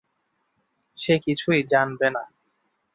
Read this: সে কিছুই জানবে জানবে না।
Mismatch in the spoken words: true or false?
true